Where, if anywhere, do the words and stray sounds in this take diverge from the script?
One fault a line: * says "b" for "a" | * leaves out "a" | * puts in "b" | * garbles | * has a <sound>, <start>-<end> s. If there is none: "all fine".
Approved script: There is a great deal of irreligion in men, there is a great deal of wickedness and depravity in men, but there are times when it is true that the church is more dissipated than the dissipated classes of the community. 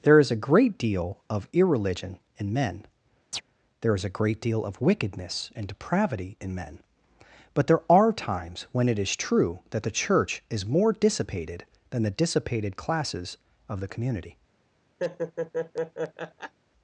* has a chirp, 3.3-3.4 s
* has a laugh, 15.0-16.5 s